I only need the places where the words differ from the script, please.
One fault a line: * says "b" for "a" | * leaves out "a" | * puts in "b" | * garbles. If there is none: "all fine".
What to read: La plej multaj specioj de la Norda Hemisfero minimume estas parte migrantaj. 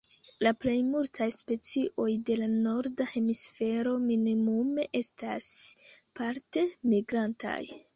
all fine